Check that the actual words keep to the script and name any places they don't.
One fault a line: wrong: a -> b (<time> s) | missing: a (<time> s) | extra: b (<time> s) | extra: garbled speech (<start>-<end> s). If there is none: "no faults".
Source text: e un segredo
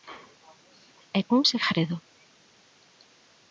no faults